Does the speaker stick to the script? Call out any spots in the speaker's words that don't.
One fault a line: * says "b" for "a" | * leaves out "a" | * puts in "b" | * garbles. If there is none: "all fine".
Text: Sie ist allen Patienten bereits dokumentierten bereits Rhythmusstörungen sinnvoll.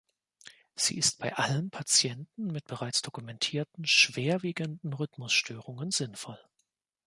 * puts in "bei"
* puts in "mit"
* says "schwerwiegenden" for "bereits"